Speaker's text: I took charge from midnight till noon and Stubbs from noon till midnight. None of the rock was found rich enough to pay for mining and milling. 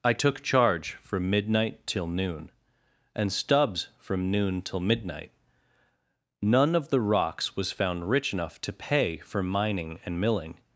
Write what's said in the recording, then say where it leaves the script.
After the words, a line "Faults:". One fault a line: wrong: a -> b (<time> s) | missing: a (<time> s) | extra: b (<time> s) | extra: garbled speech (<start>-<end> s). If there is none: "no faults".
I took charge from midnight till noon and Stubbs from noon till midnight. None of the rocks was found rich enough to pay for mining and milling.
Faults:
wrong: rock -> rocks (7.0 s)